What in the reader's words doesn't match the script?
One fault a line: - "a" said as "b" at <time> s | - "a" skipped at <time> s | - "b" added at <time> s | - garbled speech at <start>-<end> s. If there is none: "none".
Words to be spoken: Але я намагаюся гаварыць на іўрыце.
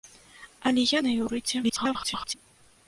- "намагаюся гаварыць" skipped at 1.0 s
- garbled speech at 1.6-2.3 s